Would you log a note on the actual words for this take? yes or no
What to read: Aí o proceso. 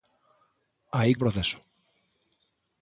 no